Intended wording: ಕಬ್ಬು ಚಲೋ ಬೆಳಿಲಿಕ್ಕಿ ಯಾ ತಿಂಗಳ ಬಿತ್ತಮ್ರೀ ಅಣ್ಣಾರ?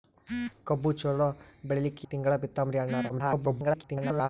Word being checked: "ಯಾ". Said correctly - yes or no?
no